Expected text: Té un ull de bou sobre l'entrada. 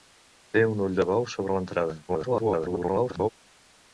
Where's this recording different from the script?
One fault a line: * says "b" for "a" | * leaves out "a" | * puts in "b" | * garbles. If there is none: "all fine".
* garbles